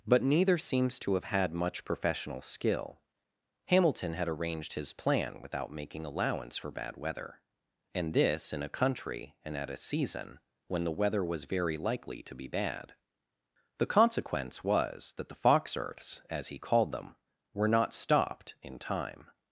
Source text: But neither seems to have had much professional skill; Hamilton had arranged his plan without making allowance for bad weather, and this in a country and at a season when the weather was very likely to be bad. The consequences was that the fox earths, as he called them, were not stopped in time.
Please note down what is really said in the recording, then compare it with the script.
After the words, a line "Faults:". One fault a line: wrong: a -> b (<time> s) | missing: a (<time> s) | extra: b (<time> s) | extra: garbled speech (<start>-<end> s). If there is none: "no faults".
But neither seems to have had much professional skill; Hamilton had arranged his plan without making allowance for bad weather, and this in a country and at a season when the weather was very likely to be bad. The consequence was that the fox earths, as he called them, were not stopped in time.
Faults:
wrong: consequences -> consequence (13.9 s)